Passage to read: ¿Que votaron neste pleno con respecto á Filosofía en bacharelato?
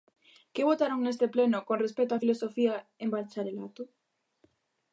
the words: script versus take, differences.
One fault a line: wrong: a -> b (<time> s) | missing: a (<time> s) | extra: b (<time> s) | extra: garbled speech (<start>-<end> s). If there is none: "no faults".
no faults